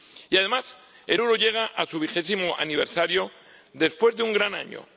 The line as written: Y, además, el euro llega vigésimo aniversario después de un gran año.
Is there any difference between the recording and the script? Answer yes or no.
yes